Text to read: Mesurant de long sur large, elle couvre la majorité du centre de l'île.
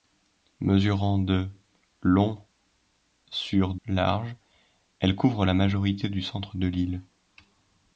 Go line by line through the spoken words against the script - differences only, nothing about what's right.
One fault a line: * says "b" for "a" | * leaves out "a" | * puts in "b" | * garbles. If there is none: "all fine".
all fine